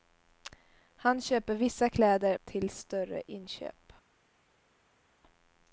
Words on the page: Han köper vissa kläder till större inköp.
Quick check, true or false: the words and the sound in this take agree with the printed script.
true